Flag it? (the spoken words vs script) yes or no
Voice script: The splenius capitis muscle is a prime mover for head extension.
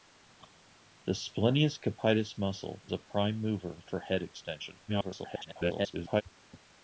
yes